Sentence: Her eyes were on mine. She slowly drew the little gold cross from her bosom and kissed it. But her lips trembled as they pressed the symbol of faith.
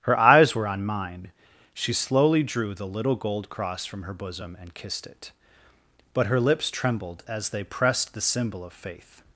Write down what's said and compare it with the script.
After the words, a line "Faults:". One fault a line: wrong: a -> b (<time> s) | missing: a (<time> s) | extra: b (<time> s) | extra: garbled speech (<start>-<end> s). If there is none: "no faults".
Her eyes were on mine. She slowly drew the little gold cross from her bosom and kissed it. But her lips trembled as they pressed the symbol of faith.
Faults:
no faults